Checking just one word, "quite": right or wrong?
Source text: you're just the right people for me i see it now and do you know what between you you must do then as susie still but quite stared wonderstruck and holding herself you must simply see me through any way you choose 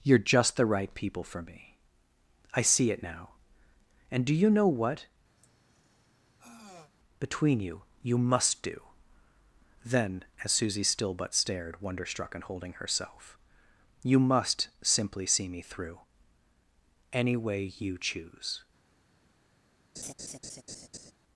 wrong